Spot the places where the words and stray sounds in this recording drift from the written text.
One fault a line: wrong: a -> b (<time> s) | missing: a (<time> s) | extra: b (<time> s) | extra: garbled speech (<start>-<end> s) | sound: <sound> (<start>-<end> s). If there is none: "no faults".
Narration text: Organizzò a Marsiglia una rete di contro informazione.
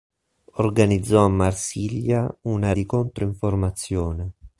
missing: rete (2.7 s)